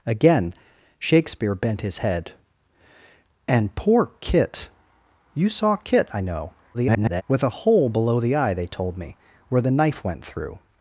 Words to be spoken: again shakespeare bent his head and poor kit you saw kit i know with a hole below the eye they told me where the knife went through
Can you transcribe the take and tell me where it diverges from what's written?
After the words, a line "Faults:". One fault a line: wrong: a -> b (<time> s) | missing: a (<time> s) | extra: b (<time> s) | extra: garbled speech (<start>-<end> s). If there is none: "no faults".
again shakespeare bent his head and poor kit you saw kit i know [garbled] with a hole below the eye they told me where the knife went through
Faults:
extra: garbled speech (6.7-7.2 s)